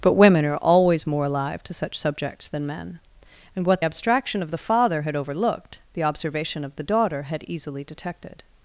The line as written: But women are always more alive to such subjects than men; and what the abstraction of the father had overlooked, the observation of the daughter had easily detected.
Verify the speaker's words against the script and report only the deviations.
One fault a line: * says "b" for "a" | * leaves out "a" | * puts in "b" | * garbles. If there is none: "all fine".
* leaves out "the"